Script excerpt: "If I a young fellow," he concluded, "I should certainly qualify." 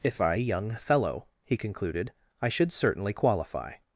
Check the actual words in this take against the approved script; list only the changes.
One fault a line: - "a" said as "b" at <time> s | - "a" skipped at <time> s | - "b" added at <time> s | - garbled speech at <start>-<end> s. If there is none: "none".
none